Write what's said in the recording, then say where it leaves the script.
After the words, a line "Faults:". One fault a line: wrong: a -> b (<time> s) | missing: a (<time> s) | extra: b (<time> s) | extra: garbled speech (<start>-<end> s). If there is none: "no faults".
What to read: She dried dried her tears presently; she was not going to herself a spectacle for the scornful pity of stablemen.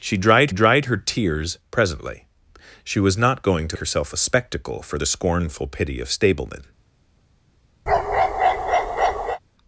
She dried dried her tears presently; she was not going to herself a spectacle for the scornful pity of stablemen.
Faults:
no faults